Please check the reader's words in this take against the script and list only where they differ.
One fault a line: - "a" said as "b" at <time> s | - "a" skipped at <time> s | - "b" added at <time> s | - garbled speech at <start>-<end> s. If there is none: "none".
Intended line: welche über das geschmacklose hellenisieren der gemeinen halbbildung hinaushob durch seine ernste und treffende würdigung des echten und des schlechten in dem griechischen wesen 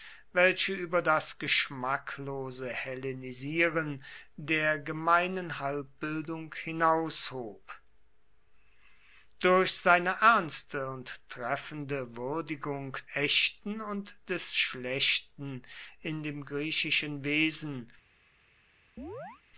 - "des" skipped at 13.0 s